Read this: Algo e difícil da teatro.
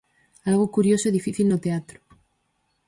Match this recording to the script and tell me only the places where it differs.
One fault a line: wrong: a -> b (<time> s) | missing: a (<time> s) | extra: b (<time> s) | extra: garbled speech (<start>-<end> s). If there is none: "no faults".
extra: curioso (0.8 s)
wrong: da -> no (1.5 s)